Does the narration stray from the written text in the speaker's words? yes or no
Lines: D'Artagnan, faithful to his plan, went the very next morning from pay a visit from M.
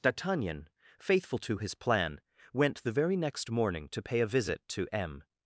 yes